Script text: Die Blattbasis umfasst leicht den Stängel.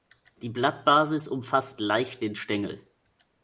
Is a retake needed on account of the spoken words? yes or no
no